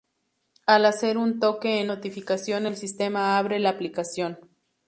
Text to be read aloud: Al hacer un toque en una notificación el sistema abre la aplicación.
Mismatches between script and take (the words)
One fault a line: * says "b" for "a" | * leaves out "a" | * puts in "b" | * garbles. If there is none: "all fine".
* leaves out "una"